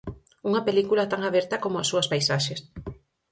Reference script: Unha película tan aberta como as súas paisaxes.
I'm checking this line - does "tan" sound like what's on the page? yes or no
yes